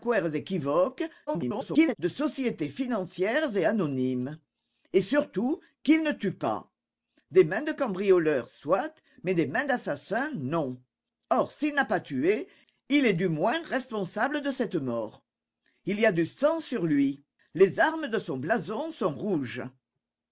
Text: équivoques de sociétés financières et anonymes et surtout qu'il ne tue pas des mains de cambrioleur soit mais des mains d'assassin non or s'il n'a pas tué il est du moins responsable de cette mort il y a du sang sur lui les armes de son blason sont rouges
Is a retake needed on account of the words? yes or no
yes